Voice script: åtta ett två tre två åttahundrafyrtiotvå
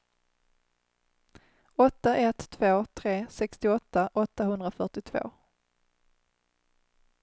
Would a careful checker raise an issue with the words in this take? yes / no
yes